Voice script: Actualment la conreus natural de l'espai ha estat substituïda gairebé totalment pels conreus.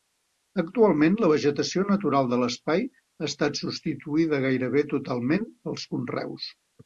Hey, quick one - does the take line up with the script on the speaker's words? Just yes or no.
no